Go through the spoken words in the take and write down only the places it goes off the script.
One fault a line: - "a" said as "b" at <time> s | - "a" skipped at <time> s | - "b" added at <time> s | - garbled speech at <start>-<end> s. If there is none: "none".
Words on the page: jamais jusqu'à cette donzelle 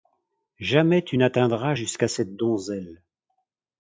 - "tu n'atteindras" added at 1.0 s